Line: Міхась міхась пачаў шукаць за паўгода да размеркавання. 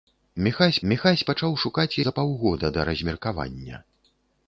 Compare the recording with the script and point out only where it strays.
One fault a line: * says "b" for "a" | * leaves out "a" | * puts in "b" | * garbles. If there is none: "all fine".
all fine